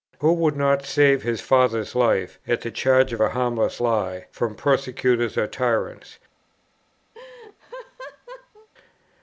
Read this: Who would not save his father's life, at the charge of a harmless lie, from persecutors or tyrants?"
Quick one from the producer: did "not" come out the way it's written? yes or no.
yes